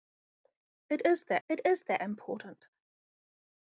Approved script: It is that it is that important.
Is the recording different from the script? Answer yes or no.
no